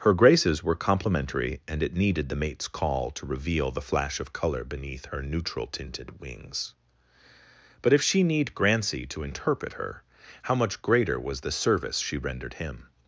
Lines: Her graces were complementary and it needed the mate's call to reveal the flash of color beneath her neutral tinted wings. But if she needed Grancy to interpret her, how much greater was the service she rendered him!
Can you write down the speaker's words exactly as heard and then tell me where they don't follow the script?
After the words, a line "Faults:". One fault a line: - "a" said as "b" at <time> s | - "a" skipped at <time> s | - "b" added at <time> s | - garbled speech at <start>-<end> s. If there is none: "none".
Her graces were complementary and it needed the mate's call to reveal the flash of color beneath her neutral tinted wings. But if she need Grancy to interpret her, how much greater was the service she rendered him!
Faults:
- "needed" said as "need" at 8.2 s